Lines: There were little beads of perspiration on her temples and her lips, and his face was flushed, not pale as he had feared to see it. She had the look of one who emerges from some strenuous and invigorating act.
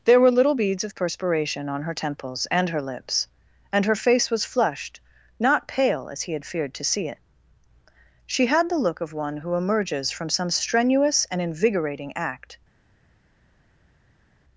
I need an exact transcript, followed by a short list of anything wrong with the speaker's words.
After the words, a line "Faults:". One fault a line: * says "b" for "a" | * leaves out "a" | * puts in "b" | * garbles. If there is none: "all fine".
There were little beads of perspiration on her temples and her lips, and her face was flushed, not pale as he had feared to see it. She had the look of one who emerges from some strenuous and invigorating act.
Faults:
* says "her" for "his"